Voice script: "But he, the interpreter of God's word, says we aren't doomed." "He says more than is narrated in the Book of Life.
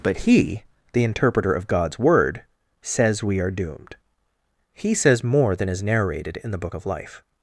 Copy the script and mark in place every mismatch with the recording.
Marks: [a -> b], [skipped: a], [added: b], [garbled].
"But he, the interpreter of God's word, says we [aren't -> are] doomed." "He says more than is narrated in the Book of Life.